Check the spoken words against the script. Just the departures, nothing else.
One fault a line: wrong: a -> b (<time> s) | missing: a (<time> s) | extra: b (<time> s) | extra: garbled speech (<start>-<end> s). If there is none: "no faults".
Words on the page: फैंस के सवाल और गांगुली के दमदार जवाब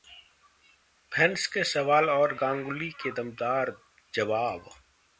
no faults